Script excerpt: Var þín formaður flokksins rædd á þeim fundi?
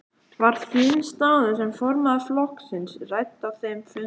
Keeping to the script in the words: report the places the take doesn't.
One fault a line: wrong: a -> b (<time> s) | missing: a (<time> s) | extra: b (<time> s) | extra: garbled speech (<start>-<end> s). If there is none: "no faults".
extra: staða sem (1.1 s)